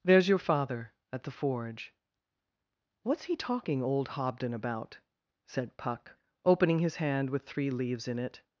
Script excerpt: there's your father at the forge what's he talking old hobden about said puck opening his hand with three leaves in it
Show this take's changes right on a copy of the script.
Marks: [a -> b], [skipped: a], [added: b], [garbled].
there's your father at the forge what's he talking old hobden about said puck opening his hand with three leaves in it